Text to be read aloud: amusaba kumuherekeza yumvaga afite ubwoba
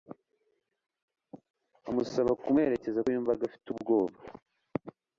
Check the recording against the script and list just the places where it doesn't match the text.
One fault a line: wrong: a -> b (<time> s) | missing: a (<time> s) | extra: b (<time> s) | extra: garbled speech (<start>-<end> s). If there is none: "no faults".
no faults